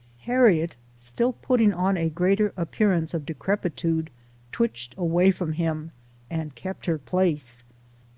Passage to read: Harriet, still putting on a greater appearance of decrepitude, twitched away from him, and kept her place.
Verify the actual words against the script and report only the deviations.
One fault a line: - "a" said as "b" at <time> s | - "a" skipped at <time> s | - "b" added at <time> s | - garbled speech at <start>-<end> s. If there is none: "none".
none